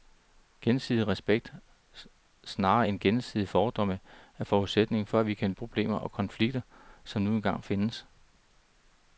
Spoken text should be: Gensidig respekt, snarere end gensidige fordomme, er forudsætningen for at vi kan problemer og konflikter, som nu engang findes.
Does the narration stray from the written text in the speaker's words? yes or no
no